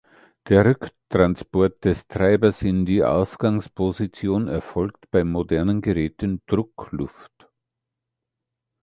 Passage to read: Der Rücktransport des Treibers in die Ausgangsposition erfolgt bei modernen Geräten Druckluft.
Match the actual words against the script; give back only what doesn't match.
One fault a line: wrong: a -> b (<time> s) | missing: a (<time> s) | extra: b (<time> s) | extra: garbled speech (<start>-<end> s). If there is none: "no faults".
no faults